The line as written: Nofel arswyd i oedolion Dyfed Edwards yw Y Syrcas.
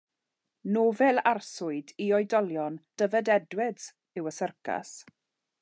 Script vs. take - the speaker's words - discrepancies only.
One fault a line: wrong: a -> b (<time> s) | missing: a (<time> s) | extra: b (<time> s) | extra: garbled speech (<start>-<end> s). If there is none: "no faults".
no faults